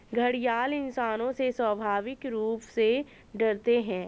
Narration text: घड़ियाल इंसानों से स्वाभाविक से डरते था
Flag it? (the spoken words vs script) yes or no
yes